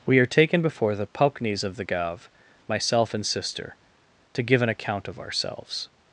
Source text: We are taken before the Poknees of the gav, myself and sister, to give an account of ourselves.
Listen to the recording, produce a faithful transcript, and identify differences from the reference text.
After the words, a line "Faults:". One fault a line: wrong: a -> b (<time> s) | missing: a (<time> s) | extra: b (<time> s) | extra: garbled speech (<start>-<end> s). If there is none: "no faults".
We are taken before the Poknees of the gav, myself and sister, to give an account of ourselves.
Faults:
no faults